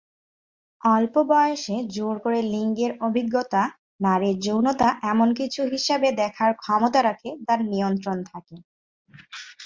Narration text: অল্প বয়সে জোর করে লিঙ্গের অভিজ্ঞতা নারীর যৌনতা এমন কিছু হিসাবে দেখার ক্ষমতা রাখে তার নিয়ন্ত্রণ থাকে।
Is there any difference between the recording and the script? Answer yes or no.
no